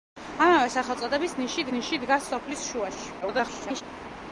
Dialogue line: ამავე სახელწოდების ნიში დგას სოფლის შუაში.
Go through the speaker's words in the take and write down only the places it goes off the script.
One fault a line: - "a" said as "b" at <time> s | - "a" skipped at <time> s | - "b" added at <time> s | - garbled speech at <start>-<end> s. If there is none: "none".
- "ნიში" added at 1.7 s
- garbled speech at 3.2-3.8 s